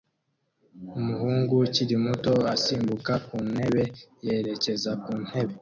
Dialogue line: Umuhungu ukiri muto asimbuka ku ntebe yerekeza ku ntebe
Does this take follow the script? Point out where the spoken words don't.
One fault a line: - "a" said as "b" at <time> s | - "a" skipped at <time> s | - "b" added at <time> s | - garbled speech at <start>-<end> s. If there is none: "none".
none